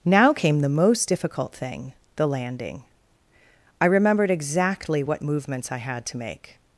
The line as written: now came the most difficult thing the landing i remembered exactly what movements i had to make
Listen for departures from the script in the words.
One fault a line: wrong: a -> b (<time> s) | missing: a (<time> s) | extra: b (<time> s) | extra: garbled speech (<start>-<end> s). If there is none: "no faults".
no faults